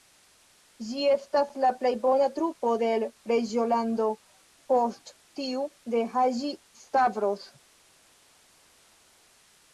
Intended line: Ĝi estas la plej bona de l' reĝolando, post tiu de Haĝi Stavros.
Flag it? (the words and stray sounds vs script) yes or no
yes